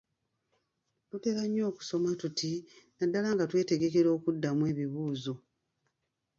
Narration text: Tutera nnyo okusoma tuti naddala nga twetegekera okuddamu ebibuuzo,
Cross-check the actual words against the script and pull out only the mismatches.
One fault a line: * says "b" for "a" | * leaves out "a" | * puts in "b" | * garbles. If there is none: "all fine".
all fine